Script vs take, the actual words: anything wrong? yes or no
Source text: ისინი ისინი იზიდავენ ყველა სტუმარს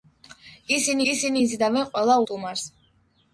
no